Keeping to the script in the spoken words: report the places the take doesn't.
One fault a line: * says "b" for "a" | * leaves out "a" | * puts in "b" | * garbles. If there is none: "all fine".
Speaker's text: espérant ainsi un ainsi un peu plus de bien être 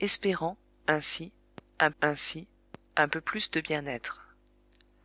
all fine